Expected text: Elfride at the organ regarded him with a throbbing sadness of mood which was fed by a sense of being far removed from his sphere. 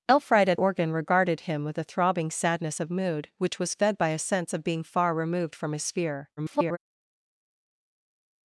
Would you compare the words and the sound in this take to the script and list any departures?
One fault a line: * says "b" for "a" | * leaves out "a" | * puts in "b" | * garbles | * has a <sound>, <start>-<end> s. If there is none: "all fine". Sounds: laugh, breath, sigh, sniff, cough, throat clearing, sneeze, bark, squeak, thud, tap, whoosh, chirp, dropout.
* leaves out "the"
* garbles